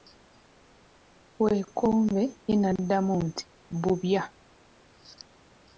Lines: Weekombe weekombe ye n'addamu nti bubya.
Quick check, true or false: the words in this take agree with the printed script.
false